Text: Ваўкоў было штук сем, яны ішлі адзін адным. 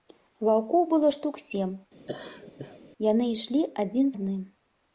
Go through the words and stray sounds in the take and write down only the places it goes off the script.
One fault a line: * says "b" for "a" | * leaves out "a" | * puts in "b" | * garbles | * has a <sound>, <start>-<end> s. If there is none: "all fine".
* has a laugh, 2.1-2.8 s